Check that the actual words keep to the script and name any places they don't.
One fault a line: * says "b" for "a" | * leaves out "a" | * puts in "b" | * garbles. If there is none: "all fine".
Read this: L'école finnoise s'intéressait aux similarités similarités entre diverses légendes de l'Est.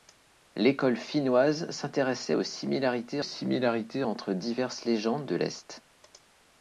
all fine